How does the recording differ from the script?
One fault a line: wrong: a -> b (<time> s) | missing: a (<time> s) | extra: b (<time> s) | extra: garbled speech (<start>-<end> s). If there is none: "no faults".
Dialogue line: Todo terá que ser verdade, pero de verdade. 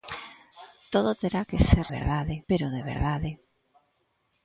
no faults